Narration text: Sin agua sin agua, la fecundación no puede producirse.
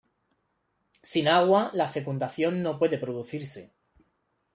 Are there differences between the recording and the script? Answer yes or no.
yes